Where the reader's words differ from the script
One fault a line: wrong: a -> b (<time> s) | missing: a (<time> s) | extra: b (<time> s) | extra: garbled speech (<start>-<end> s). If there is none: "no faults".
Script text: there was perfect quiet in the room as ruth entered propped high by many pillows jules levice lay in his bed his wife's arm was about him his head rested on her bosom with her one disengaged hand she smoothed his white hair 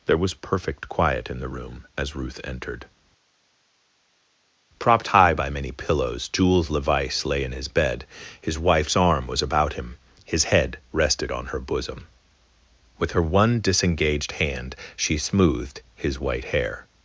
no faults